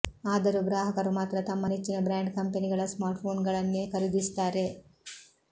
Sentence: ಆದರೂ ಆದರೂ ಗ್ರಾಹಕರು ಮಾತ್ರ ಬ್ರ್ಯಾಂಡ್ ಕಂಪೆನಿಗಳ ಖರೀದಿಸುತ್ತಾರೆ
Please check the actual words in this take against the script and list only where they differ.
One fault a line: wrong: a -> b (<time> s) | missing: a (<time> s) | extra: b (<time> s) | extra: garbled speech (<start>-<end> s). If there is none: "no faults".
missing: ಆದರೂ (0.6 s)
extra: ತಮ್ಮ ನೆಚ್ಚಿನ (1.4 s)
extra: ಸ್ಮಾರ್ಟ್ಫೋನ್ಗಳನ್ನೇ (2.9 s)